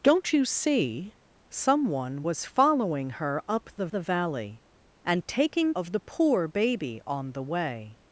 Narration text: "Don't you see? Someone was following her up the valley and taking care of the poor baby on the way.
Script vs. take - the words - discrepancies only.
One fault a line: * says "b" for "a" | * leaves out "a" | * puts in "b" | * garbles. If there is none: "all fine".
* puts in "the"
* leaves out "care"